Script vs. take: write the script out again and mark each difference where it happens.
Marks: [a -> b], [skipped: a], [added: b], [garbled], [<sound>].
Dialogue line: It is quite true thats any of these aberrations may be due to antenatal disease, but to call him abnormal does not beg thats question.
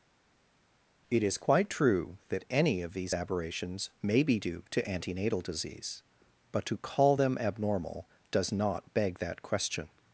It is quite true [thats -> that] any of these aberrations may be due to antenatal disease, but to call [him -> them] abnormal does not beg [thats -> that] question.